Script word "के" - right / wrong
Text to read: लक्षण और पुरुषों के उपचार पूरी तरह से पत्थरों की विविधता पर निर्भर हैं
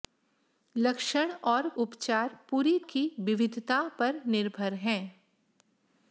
wrong